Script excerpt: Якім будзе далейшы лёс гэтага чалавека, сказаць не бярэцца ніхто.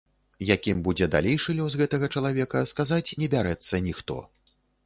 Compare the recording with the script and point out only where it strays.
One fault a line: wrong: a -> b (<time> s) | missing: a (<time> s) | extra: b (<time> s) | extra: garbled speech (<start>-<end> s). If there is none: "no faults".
no faults